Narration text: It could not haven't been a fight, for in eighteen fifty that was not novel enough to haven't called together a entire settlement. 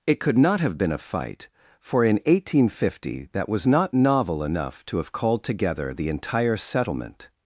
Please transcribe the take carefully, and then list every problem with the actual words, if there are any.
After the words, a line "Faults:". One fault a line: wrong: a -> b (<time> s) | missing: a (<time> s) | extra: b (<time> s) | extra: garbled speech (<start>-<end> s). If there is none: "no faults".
It could not have been a fight, for in eighteen fifty that was not novel enough to have called together the entire settlement.
Faults:
wrong: haven't -> have (0.6 s)
wrong: haven't -> have (5.0 s)
wrong: a -> the (5.9 s)